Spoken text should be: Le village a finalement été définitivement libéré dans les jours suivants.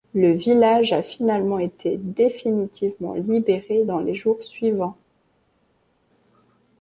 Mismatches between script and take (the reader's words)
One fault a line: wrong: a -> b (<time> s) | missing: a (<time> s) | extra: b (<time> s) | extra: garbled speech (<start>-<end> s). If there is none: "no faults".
no faults